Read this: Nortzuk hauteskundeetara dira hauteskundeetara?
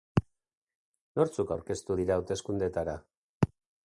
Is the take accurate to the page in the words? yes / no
no